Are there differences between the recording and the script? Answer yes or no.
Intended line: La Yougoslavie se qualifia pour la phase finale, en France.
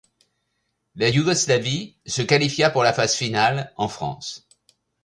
no